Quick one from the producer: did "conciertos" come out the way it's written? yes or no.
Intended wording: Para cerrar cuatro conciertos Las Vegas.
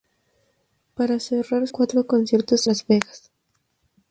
yes